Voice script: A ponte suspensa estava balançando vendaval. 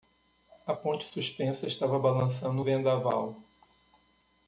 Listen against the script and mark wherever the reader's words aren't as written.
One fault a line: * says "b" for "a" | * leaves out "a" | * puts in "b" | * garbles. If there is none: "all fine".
all fine